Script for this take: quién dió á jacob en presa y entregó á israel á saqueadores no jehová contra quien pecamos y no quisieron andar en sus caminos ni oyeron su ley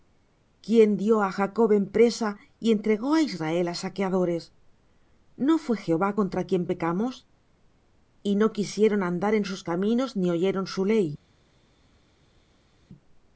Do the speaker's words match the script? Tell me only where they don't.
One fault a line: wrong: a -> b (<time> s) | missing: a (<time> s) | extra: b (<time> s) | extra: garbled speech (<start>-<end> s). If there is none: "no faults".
extra: fué (5.6 s)